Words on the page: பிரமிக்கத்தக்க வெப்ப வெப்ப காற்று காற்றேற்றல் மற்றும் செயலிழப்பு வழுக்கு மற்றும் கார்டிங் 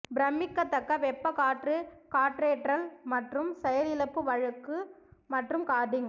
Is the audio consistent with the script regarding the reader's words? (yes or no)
no